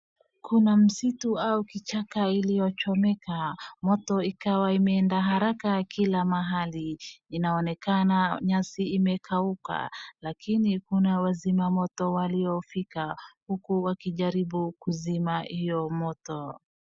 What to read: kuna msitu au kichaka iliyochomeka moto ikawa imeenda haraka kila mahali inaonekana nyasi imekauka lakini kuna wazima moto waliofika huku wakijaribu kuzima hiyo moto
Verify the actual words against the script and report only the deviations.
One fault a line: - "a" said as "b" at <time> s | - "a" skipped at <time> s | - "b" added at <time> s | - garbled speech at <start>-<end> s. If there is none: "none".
none